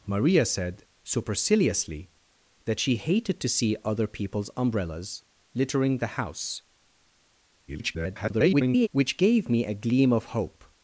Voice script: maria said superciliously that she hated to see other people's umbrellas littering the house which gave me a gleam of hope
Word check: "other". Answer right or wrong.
right